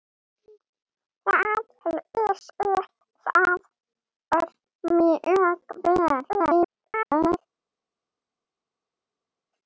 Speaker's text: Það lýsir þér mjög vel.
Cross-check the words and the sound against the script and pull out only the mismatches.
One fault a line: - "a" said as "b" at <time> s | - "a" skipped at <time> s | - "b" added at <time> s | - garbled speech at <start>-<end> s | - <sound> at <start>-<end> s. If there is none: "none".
- garbled speech at 6.3-7.4 s